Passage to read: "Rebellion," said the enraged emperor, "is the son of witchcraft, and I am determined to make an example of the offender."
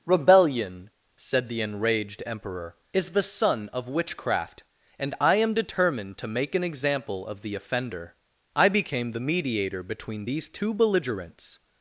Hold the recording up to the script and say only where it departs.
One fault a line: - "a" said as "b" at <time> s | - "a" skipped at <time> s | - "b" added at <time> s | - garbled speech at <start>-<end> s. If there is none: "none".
- "I became the mediator between these two belligerents" added at 8.6 s